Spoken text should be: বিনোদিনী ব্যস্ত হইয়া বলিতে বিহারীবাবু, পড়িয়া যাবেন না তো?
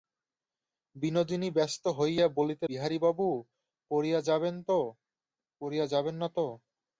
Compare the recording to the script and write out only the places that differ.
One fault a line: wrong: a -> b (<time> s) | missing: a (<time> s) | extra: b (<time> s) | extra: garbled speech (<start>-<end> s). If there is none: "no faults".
no faults